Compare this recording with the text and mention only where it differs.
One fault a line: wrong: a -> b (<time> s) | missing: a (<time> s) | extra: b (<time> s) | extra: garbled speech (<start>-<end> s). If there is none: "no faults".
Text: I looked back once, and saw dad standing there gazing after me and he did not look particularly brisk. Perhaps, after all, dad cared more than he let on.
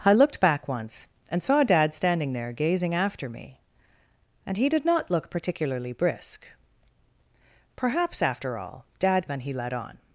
missing: cared more (9.3 s)